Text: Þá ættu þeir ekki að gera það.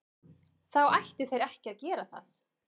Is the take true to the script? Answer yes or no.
yes